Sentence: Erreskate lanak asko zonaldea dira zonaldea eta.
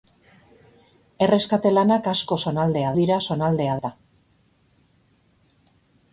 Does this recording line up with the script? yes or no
yes